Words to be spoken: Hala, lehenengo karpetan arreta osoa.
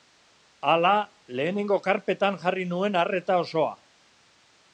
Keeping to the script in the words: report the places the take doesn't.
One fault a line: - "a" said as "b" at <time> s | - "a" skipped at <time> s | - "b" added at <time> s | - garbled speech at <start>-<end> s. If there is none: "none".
- "jarri nuen" added at 2.5 s